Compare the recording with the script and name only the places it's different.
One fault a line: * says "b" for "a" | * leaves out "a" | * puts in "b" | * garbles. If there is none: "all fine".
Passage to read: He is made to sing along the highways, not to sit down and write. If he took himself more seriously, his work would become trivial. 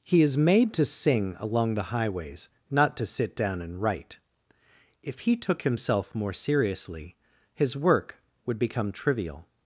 all fine